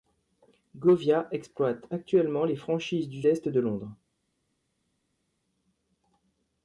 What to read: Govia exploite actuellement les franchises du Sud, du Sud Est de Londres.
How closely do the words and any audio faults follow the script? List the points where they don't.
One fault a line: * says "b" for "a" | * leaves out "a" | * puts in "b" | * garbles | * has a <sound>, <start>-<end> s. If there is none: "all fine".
* leaves out "Sud du Sud"